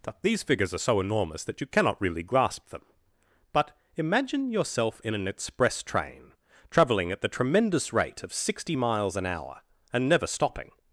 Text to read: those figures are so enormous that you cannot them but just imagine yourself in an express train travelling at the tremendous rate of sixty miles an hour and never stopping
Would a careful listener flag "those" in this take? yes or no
yes